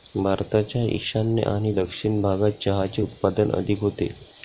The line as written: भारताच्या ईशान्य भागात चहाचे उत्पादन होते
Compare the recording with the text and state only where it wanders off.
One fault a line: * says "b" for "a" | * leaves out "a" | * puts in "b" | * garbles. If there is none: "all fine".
* puts in "आणि दक्षिण"
* puts in "अधिक"